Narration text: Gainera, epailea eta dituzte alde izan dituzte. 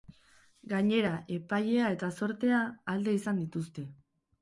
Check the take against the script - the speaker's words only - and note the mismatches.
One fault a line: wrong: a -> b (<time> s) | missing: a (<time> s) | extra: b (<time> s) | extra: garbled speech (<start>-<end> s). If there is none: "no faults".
wrong: dituzte -> zortea (2.2 s)